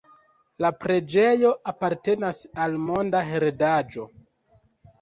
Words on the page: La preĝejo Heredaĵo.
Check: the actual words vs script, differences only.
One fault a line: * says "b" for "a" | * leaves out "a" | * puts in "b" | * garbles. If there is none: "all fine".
* puts in "apartenas al Monda"